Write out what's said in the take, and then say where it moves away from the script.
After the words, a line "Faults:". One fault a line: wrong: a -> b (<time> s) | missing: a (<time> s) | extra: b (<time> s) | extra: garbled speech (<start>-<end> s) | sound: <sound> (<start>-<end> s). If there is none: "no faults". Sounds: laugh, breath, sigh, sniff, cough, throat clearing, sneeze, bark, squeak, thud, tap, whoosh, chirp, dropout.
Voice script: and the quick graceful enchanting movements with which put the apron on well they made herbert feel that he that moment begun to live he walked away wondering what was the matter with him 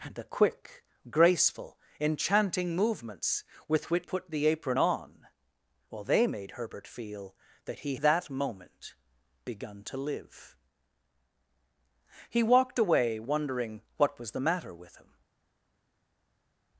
and the quick graceful enchanting movements with which put the apron on well they made herbert feel that he that moment begun to live he walked away wondering what was the matter with him
Faults:
no faults